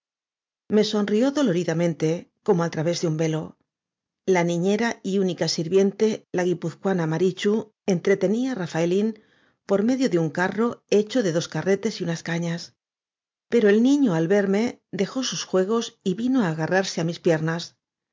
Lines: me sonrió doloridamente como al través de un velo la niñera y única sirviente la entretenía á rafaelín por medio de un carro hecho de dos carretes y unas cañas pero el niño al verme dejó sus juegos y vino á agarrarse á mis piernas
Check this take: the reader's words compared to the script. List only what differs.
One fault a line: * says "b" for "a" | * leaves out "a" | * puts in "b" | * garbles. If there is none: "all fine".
* puts in "guipuzcoana marichu"